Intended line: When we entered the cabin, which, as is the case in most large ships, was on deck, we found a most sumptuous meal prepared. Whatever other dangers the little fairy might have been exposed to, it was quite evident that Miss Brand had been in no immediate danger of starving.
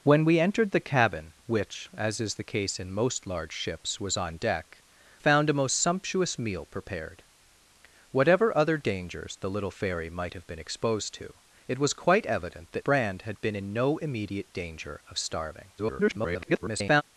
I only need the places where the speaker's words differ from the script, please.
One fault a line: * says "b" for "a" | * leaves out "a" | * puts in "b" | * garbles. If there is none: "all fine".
* leaves out "we"
* leaves out "Miss"
* garbles